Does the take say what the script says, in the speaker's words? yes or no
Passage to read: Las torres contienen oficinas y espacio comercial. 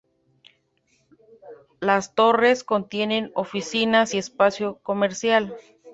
yes